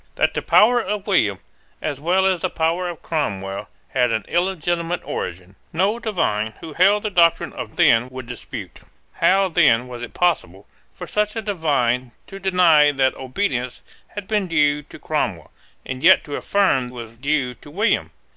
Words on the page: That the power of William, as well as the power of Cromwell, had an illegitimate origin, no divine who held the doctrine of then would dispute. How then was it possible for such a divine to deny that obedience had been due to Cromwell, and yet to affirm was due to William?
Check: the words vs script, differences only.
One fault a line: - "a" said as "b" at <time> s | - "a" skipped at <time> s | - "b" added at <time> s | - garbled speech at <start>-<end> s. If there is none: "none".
none